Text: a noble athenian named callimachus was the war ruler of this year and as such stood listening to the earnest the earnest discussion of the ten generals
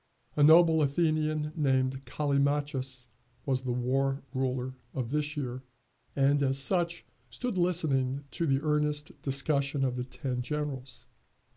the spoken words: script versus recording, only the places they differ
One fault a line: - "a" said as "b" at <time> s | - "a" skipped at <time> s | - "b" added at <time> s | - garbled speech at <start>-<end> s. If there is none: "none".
- "the earnest" skipped at 9.2 s